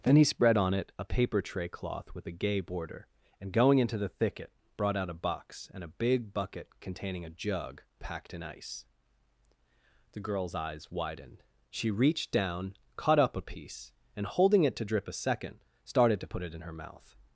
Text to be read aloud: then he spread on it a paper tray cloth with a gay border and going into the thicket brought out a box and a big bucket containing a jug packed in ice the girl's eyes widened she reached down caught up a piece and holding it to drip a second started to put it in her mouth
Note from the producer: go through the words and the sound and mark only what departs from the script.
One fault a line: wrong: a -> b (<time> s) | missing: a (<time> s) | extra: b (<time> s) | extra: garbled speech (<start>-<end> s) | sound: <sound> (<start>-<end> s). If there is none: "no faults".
no faults